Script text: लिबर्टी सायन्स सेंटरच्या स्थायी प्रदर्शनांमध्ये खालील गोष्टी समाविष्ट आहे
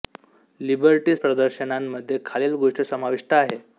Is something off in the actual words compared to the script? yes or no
yes